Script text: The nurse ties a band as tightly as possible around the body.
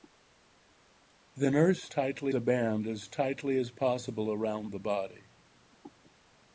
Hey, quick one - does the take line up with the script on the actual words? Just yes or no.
no